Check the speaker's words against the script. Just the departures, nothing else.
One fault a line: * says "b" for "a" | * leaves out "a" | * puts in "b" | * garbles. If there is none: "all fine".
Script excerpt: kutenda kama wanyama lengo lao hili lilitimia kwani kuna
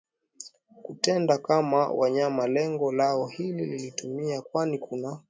all fine